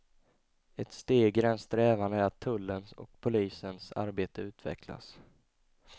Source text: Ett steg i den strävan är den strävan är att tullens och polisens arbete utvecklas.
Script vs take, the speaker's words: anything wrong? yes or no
yes